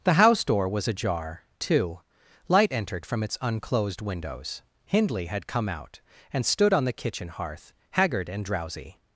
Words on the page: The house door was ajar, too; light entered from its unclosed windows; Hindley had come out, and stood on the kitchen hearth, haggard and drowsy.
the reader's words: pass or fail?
pass